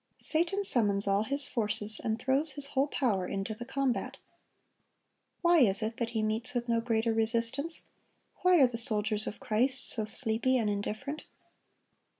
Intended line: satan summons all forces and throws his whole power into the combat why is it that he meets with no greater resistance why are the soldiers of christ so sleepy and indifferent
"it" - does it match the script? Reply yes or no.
yes